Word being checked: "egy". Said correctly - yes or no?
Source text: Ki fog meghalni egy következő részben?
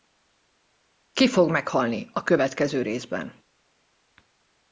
no